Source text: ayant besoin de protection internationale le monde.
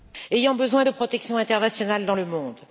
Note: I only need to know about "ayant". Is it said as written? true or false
true